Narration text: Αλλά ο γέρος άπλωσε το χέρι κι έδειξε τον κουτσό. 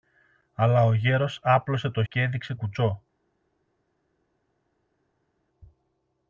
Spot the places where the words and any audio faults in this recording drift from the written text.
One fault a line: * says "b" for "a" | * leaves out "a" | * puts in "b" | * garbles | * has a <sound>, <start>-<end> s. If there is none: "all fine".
* leaves out "χέρι"
* leaves out "τον"